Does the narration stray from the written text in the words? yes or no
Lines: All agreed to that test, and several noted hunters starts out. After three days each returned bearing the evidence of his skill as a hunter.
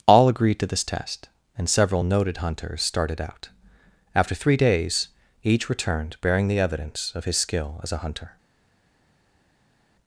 yes